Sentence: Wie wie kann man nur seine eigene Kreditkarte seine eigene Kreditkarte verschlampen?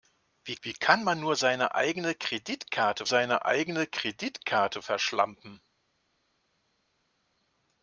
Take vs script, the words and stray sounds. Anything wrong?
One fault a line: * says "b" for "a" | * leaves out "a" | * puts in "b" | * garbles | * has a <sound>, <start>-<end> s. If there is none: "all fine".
all fine